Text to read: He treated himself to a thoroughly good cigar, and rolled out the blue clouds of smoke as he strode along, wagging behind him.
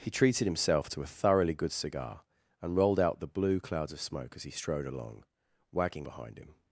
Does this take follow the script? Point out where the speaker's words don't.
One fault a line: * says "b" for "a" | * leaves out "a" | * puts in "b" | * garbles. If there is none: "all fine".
all fine